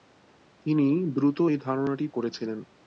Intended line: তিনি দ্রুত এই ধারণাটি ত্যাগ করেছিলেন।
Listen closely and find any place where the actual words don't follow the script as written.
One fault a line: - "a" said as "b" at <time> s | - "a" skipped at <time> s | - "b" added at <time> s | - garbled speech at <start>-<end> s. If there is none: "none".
- "ত্যাগ" skipped at 2.1 s